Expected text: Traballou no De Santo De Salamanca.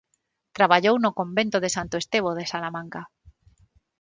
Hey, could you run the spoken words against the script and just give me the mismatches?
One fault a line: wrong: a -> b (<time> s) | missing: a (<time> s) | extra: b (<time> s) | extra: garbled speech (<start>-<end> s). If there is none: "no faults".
extra: Convento (1.2 s)
extra: Estevo (2.0 s)